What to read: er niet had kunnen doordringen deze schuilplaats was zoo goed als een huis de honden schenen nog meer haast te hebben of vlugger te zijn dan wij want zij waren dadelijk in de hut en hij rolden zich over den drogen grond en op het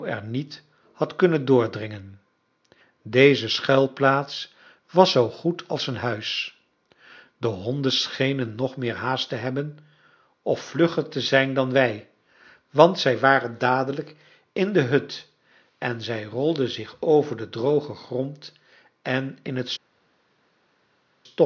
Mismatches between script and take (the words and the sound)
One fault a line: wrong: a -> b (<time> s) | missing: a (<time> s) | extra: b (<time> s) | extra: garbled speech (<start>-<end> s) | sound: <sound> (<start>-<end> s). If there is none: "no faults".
wrong: hij -> zij (16.0 s)
wrong: op -> in (19.4 s)